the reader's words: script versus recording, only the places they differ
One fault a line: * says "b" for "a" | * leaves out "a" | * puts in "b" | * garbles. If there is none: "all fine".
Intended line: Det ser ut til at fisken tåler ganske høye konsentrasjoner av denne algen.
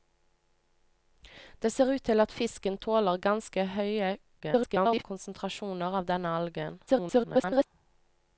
* garbles
* garbles